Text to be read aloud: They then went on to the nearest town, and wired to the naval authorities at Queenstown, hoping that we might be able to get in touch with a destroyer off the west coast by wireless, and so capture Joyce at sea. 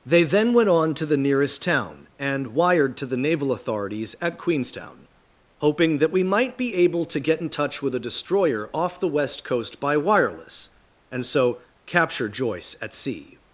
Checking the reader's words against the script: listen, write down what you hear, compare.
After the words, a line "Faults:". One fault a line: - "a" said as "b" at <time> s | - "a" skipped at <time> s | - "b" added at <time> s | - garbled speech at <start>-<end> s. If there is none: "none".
They then went on to the nearest town, and wired to the naval authorities at Queenstown, hoping that we might be able to get in touch with a destroyer off the west coast by wireless, and so capture Joyce at sea.
Faults:
none